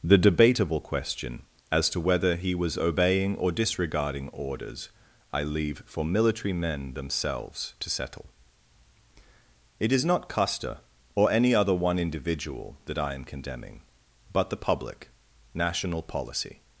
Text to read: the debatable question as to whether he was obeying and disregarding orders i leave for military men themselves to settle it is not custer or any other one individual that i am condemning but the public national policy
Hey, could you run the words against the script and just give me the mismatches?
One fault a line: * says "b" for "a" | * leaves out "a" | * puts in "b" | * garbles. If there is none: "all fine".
* says "or" for "and"